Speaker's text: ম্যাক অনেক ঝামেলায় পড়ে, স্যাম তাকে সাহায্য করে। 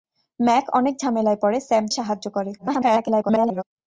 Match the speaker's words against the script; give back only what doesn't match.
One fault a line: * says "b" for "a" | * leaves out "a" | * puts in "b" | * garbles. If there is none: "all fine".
* leaves out "তাকে"
* garbles